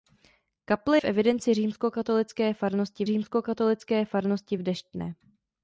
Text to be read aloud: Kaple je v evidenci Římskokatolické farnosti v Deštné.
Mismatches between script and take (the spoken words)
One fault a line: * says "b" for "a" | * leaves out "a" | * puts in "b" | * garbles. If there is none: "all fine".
* leaves out "je"
* puts in "Římskokatolické farnosti"